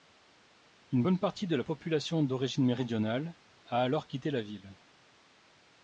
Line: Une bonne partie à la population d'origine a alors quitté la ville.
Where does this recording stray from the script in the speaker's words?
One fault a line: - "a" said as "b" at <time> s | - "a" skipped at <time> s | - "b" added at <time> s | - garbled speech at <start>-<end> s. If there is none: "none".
- "à" said as "de" at 1.4 s
- "méridionale" added at 2.6 s